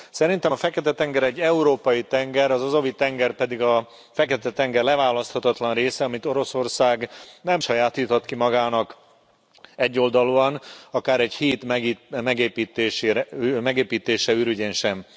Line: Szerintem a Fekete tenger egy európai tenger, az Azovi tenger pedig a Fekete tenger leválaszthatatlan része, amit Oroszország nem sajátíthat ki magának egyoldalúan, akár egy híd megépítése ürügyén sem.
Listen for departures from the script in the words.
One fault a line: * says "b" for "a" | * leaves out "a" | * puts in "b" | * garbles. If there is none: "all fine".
all fine